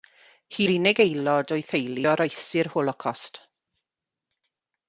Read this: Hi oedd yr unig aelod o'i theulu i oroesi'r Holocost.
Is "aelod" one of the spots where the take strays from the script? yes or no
no